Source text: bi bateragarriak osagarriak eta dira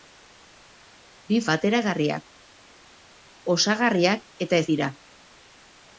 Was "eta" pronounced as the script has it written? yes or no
yes